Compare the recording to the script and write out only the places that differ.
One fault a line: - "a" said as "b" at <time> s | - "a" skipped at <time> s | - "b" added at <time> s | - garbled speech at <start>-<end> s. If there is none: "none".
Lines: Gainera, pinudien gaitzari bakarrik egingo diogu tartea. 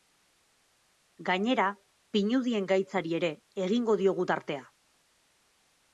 - "bakarrik" said as "ere" at 3.2 s